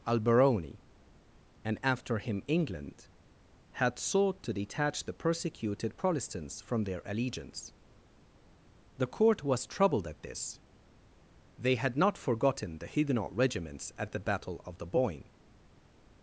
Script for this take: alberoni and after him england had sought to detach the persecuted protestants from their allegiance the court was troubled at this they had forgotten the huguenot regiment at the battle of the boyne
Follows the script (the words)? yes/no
no